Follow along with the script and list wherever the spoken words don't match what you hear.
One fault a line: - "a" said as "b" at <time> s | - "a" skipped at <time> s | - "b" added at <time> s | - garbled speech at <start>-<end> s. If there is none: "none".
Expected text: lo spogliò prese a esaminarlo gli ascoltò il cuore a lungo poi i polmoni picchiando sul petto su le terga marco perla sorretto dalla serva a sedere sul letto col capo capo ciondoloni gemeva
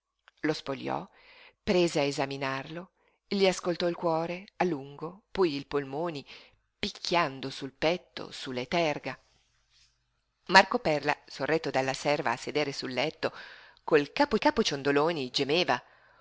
none